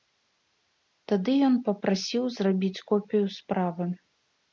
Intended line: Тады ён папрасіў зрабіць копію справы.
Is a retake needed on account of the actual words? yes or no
no